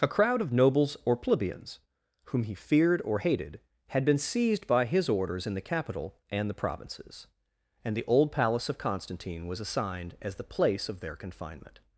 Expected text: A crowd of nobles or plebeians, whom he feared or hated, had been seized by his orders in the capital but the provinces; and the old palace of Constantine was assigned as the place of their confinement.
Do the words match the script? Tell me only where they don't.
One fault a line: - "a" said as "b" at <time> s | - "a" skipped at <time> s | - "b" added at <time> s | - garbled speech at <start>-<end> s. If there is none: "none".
- "but" said as "and" at 6.3 s